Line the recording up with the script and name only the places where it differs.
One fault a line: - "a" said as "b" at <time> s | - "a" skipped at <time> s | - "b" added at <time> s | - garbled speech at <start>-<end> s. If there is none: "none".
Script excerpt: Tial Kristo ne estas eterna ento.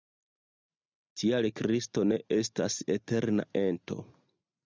none